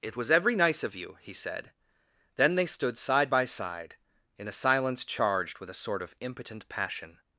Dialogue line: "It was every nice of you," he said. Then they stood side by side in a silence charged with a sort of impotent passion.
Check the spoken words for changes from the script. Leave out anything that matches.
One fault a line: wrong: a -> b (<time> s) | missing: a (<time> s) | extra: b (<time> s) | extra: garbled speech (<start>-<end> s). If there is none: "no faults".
no faults